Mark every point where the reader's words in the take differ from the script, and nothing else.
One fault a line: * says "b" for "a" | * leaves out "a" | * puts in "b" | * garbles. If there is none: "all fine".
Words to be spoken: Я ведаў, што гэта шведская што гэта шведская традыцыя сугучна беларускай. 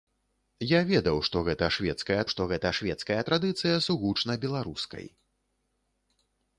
all fine